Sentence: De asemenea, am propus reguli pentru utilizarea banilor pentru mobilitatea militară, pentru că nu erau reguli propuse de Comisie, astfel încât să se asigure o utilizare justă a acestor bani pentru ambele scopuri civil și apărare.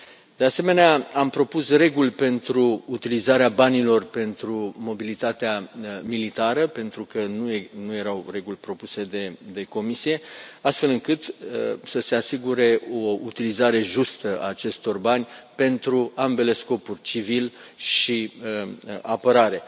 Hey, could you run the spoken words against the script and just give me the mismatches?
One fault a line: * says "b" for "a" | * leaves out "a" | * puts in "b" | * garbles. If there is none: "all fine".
all fine